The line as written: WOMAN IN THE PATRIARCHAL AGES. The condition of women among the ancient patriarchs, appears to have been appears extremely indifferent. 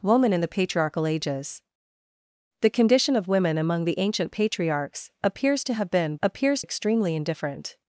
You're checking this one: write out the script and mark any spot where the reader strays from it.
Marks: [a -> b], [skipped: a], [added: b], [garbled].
WOMAN IN THE PATRIARCHAL AGES. The condition of women among the ancient patriarchs, appears to have been appears extremely indifferent.